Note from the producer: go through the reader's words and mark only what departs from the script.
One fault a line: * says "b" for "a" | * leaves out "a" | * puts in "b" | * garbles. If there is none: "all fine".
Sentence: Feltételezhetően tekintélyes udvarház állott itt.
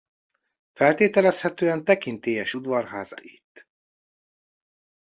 * leaves out "állott"